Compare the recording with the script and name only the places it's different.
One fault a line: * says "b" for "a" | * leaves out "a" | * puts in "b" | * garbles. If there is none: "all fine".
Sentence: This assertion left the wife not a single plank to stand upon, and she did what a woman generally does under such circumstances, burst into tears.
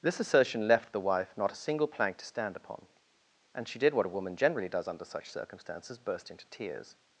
all fine